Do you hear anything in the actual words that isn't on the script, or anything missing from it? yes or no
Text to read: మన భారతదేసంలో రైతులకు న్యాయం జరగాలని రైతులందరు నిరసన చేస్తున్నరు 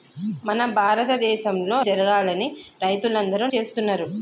yes